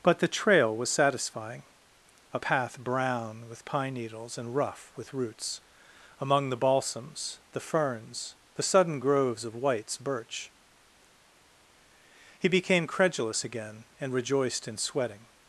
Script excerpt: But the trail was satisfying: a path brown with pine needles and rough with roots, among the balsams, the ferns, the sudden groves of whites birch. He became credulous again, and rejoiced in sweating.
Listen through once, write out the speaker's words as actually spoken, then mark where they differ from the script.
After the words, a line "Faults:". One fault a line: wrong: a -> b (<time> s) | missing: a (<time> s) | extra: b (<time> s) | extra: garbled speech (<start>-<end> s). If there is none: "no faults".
But the trail was satisfying: a path brown with pine needles and rough with roots, among the balsams, the ferns, the sudden groves of whites birch. He became credulous again, and rejoiced in sweating.
Faults:
no faults